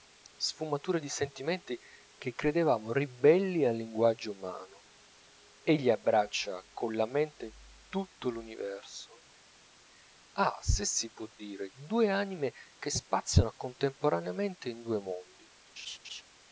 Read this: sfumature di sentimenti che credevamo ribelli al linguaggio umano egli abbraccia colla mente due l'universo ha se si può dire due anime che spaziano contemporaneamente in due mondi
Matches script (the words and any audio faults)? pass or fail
fail